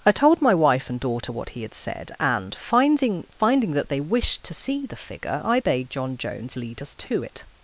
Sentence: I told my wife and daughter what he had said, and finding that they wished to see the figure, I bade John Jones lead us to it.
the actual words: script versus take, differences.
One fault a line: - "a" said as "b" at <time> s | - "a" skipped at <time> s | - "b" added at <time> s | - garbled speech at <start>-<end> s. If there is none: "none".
- "finding" added at 3.4 s